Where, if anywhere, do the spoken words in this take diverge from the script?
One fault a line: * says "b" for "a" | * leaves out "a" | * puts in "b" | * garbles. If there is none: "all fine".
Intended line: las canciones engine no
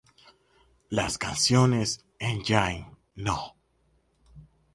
all fine